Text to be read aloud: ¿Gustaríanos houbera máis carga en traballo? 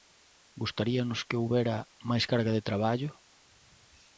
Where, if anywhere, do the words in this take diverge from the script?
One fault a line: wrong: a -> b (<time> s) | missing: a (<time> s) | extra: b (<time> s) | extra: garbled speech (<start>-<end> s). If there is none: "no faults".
extra: que (1.3 s)
wrong: en -> de (2.6 s)